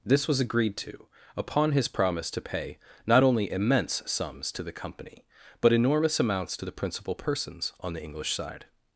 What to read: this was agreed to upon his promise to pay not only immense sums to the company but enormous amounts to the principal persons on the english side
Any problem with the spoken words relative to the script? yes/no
no